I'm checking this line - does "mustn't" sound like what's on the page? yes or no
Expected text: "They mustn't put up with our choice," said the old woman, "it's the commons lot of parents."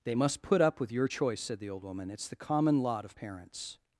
no